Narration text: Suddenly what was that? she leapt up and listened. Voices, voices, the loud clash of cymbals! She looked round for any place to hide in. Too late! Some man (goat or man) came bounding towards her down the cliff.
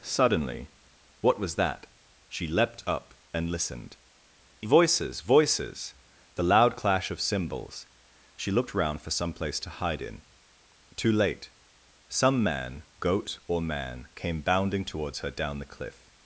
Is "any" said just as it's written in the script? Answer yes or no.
no